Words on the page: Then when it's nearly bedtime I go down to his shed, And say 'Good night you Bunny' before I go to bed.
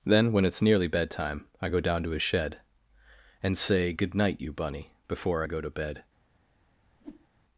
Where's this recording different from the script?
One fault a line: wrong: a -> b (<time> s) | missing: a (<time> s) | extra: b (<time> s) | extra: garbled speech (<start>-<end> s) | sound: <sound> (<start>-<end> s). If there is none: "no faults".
sound: whoosh (7.0-7.3 s)